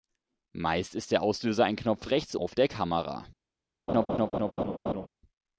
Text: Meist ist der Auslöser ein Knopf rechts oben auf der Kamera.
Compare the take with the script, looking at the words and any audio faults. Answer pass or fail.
fail